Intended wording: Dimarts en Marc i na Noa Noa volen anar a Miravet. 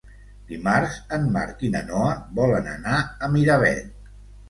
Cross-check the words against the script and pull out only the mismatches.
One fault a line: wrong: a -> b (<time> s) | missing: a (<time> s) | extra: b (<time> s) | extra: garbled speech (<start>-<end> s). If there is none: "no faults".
missing: Noa (2.2 s)